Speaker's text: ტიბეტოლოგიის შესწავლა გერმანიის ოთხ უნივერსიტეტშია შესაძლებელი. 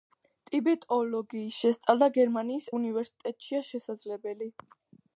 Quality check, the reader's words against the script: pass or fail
fail